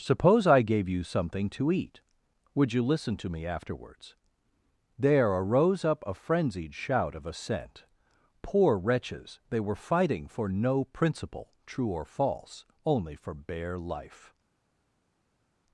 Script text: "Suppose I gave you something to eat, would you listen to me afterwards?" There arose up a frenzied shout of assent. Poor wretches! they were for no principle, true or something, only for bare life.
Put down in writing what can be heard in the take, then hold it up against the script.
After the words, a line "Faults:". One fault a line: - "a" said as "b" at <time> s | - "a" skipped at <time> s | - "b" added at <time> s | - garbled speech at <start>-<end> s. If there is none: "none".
"Suppose I gave you something to eat, would you listen to me afterwards?" There arose up a frenzied shout of assent. Poor wretches! they were fighting for no principle, true or false, only for bare life.
Faults:
- "fighting" added at 9.8 s
- "something" said as "false" at 12.1 s